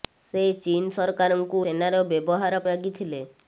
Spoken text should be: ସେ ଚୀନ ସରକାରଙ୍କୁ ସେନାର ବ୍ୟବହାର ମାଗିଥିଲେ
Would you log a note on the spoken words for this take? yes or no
no